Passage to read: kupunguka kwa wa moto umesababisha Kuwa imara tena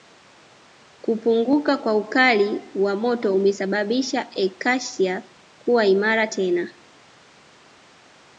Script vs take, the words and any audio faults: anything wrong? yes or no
yes